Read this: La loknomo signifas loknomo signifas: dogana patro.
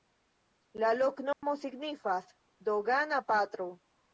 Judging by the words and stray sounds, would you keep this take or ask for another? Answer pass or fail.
fail